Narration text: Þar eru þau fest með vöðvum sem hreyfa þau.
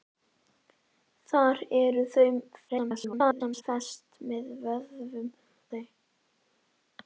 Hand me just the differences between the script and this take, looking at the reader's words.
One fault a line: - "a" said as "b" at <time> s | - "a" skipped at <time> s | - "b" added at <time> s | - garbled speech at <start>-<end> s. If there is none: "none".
- garbled speech at 2.7-3.6 s
- "sem hreyfa" skipped at 5.3 s